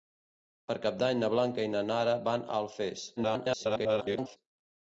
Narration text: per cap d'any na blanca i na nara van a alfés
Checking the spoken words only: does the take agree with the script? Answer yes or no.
no